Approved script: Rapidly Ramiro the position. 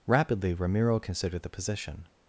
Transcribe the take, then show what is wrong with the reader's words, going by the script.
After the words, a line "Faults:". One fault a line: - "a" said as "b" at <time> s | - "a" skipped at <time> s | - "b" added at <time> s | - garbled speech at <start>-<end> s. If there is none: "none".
Rapidly Ramiro considered the position.
Faults:
- "considered" added at 1.0 s